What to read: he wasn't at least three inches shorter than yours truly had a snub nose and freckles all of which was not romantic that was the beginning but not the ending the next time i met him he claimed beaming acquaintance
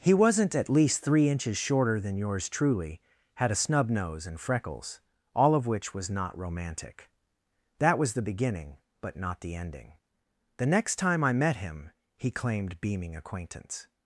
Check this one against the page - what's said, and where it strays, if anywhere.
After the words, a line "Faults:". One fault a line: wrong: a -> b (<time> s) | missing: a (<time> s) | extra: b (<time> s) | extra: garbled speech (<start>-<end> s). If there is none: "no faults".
he wasn't at least three inches shorter than yours truly had a snub nose and freckles all of which was not romantic that was the beginning but not the ending the next time i met him he claimed beaming acquaintance
Faults:
no faults